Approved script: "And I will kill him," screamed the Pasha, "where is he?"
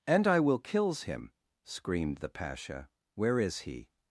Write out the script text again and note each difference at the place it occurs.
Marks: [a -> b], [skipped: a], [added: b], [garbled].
"And I will [kill -> kills] him," screamed the Pasha, "where is he?"